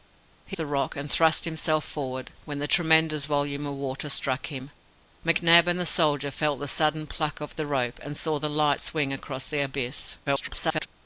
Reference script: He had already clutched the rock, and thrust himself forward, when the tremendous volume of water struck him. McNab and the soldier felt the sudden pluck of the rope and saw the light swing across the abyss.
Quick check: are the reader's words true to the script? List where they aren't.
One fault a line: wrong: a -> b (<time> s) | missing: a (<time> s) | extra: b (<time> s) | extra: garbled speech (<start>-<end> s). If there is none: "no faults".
missing: had already clutched (0.6 s)
extra: garbled speech (10.3-10.9 s)